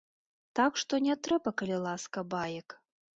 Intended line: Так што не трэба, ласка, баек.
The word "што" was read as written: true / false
true